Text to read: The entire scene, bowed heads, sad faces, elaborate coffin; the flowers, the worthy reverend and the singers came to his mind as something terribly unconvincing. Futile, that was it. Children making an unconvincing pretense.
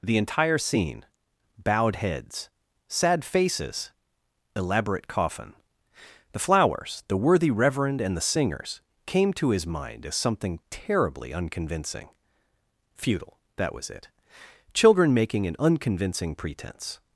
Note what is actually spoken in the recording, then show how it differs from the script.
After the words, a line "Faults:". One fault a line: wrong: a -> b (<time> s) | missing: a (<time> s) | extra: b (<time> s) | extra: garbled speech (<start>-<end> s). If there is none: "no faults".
The entire scene, bowed heads, sad faces, elaborate coffin; the flowers, the worthy reverend and the singers came to his mind as something terribly unconvincing. Futile, that was it. Children making an unconvincing pretense.
Faults:
no faults